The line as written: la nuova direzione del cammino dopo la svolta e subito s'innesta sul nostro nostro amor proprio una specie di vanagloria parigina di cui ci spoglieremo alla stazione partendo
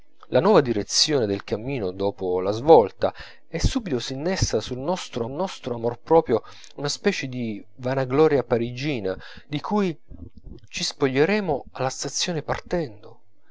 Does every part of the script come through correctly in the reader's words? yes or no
yes